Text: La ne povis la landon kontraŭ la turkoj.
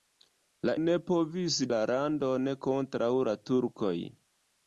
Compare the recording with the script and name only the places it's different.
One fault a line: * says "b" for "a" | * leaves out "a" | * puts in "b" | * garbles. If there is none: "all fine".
all fine